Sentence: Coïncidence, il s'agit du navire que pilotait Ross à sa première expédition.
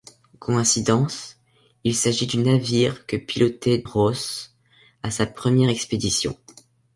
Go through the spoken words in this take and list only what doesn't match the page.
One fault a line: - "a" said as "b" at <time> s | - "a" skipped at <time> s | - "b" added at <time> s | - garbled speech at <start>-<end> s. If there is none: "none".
none